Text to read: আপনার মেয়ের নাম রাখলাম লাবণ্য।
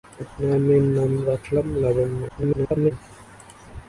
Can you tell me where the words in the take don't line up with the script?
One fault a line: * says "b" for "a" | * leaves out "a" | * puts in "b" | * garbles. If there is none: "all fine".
* garbles